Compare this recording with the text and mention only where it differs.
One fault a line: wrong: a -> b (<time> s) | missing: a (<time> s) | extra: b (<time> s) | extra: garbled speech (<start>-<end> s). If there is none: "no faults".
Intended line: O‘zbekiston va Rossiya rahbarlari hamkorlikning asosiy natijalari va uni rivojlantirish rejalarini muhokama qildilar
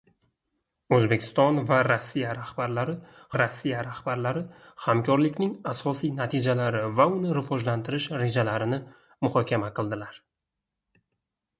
extra: Rossiya rahbarlari (3.4 s)